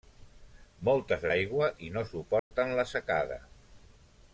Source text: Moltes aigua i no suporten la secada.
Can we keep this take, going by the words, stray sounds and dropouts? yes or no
no